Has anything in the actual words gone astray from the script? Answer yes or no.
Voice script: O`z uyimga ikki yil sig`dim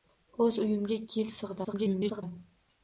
yes